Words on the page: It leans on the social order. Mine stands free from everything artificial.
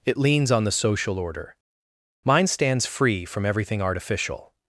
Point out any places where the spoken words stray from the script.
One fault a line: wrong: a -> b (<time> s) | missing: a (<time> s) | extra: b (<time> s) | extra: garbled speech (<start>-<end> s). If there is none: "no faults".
no faults